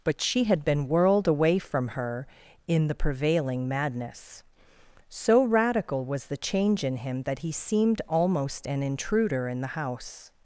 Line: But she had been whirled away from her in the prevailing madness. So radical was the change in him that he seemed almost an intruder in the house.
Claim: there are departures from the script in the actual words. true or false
false